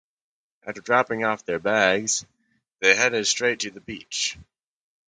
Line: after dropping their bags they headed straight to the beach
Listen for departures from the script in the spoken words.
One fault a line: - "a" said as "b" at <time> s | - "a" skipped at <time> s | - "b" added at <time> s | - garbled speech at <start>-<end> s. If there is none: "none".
- "off" added at 1.2 s